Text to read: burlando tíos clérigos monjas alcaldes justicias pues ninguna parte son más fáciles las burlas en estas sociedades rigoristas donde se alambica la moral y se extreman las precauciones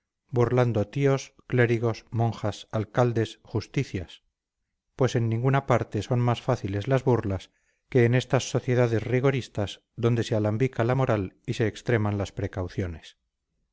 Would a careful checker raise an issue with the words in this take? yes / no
yes